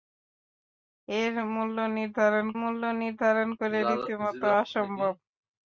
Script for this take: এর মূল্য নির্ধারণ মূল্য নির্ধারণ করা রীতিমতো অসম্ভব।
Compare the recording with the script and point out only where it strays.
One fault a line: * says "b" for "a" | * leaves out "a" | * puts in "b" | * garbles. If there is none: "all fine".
all fine